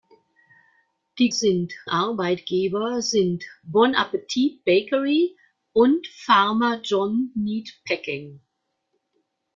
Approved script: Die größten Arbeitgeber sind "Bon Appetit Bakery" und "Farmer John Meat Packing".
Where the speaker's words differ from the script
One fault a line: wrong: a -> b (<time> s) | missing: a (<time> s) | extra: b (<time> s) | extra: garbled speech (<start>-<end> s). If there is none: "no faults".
wrong: größten -> sind (1.3 s)